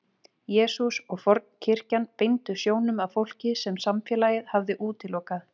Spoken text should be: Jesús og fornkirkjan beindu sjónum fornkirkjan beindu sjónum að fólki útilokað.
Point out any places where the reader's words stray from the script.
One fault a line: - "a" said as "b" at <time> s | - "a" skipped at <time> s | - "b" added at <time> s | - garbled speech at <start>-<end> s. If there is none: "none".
- "fornkirkjan beindu sjónum að fólki" said as "að fólki sem samfélagið hafði" at 3.1 s